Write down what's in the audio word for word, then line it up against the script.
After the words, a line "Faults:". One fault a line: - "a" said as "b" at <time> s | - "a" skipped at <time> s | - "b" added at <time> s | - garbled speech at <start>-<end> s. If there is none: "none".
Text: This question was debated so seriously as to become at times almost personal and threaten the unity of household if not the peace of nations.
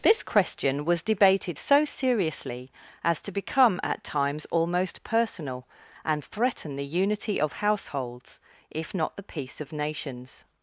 This question was debated so seriously as to become at times almost personal and threaten the unity of households if not the peace of nations.
Faults:
- "household" said as "households" at 7.5 s